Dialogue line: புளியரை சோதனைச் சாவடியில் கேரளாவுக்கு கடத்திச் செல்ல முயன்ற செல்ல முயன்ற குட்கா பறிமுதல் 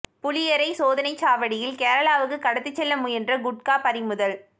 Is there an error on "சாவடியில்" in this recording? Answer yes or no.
no